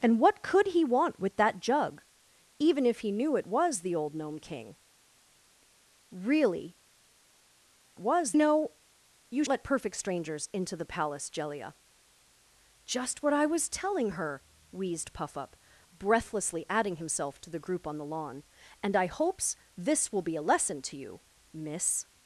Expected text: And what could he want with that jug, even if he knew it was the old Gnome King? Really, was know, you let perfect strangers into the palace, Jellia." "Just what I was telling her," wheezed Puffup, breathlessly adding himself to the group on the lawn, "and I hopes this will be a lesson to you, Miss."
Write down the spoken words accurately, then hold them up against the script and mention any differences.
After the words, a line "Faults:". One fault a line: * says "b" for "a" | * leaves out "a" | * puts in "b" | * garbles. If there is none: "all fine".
And what could he want with that jug, even if he knew it was the old Gnome King? Really, was know, you let perfect strangers into the palace, Jellia." "Just what I was telling her," wheezed Puffup, breathlessly adding himself to the group on the lawn, "and I hopes this will be a lesson to you, Miss."
Faults:
all fine